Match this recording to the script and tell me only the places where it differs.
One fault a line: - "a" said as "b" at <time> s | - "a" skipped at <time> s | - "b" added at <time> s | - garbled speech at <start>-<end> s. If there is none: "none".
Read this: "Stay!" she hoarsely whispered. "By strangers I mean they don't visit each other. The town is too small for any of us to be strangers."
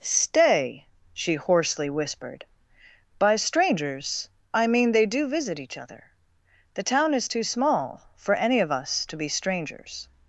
- "don't" said as "do" at 5.0 s